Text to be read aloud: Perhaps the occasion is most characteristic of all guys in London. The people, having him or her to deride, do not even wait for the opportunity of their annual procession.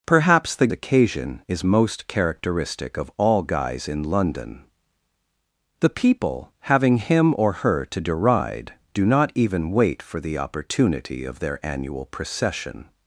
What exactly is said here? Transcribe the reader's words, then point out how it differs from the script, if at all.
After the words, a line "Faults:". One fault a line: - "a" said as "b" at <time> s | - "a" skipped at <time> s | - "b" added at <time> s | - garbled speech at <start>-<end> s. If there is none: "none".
Perhaps the occasion is most characteristic of all guys in London. The people, having him or her to deride, do not even wait for the opportunity of their annual procession.
Faults:
none